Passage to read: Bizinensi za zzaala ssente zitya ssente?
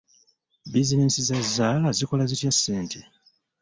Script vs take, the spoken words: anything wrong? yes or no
yes